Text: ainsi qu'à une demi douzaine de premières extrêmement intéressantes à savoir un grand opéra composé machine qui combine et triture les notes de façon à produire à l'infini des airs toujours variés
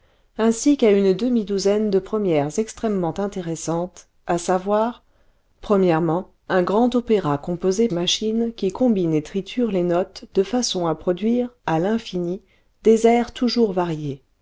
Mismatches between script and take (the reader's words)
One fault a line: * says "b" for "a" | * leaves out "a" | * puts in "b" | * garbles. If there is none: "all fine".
all fine